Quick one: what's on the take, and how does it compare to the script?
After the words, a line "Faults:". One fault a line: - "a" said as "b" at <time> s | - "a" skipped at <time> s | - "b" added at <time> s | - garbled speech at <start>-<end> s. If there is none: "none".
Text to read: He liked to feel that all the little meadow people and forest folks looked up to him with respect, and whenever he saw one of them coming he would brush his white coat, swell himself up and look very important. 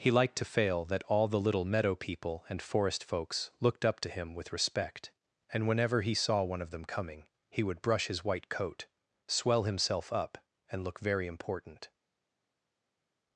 He liked to fail that all the little meadow people and forest folks looked up to him with respect, and whenever he saw one of them coming he would brush his white coat, swell himself up and look very important.
Faults:
- "feel" said as "fail" at 0.5 s